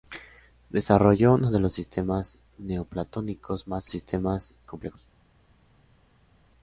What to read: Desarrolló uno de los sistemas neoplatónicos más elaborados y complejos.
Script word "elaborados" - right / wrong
wrong